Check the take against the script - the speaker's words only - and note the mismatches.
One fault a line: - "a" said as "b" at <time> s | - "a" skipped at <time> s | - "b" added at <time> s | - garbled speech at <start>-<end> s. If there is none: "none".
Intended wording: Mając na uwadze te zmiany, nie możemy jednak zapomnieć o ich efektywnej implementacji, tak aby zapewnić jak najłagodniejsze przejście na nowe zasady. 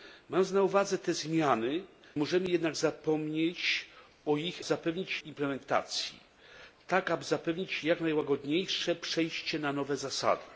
- "nie" skipped at 1.8 s
- "efektywnej" said as "zapewnić" at 4.6 s